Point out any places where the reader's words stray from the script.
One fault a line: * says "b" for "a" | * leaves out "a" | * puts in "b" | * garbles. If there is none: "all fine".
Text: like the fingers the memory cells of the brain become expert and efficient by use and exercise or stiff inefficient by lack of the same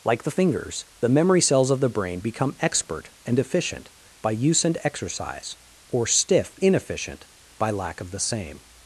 all fine